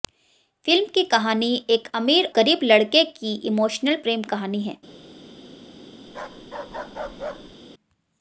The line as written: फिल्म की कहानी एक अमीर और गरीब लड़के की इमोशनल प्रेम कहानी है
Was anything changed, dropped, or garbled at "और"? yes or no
yes